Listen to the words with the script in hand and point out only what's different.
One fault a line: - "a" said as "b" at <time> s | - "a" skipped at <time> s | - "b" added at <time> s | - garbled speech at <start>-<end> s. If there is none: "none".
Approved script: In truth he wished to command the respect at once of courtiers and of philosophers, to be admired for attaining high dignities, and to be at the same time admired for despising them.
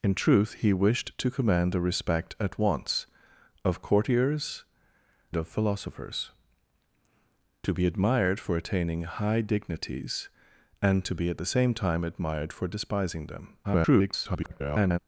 - "and" skipped at 4.6 s
- garbled speech at 13.6-15.0 s